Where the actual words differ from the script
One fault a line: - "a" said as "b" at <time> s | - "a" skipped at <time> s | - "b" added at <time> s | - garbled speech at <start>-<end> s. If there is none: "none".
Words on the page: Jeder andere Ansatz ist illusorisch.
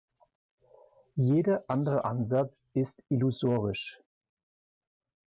none